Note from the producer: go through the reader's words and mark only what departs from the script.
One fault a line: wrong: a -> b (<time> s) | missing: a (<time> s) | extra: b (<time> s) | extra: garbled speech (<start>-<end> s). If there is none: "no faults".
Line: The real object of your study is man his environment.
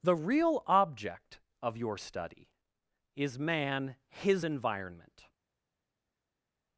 no faults